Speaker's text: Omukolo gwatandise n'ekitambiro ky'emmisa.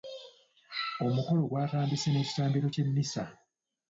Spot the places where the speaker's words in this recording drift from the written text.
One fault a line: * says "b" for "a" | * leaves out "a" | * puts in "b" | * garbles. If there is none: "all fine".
all fine